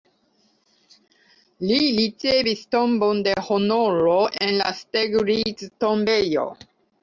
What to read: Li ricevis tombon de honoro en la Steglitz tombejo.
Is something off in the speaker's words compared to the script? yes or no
no